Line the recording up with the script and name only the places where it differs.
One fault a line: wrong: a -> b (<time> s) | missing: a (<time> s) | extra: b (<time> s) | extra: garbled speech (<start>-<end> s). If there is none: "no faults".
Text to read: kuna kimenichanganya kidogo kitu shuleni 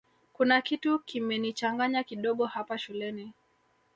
extra: kitu (0.6 s)
wrong: kitu -> hapa (2.5 s)